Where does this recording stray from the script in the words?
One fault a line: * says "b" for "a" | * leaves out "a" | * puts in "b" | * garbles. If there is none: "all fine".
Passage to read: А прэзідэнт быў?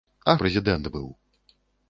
all fine